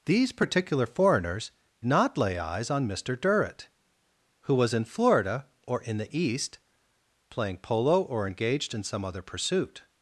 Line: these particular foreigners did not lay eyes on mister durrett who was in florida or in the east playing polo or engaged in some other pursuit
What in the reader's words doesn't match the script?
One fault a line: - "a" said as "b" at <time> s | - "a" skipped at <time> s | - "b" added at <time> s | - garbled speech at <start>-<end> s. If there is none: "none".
- "did" skipped at 1.5 s